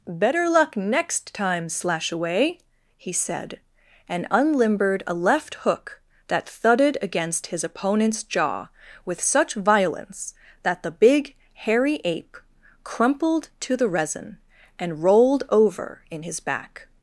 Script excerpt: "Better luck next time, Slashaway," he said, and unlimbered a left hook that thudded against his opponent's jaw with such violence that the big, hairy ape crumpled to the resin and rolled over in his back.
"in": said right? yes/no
yes